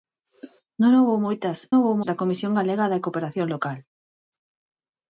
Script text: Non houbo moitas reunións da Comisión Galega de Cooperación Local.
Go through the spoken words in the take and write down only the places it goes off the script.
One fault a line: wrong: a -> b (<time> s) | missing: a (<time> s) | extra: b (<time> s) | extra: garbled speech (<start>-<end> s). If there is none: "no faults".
wrong: reunións -> houbo (1.7 s)